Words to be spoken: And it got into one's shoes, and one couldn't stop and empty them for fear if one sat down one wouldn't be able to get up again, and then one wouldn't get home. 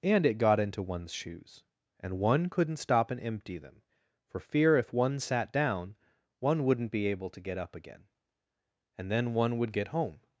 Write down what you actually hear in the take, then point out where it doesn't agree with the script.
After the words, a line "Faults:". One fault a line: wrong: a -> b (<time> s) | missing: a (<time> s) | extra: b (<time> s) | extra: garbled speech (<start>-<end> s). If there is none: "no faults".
And it got into one's shoes, and one couldn't stop and empty them for fear if one sat down one wouldn't be able to get up again, and then one would get home.
Faults:
wrong: wouldn't -> would (9.6 s)